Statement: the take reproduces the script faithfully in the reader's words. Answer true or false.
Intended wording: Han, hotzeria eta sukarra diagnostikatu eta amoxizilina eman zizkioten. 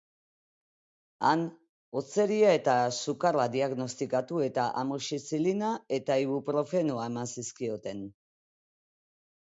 false